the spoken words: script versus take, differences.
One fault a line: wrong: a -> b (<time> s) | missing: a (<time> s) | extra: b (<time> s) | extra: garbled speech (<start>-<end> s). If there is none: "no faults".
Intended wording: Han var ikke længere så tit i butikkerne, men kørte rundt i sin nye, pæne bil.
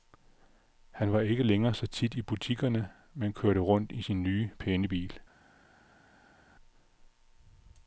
no faults